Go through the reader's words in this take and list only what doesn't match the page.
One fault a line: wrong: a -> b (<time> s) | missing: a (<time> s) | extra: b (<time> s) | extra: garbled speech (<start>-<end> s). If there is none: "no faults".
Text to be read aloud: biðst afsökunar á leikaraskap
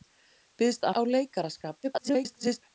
missing: afsökunar (0.9 s)
extra: garbled speech (1.8-2.6 s)